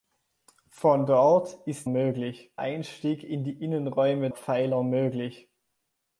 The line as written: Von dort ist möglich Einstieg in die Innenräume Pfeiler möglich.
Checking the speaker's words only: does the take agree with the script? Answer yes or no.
yes